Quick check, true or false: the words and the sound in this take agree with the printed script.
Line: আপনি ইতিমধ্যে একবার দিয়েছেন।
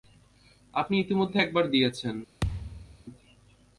false